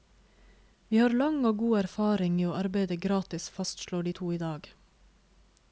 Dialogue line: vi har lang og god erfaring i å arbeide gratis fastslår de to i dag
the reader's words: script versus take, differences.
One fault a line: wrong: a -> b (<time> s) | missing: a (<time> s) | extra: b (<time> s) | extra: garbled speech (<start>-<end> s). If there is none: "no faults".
no faults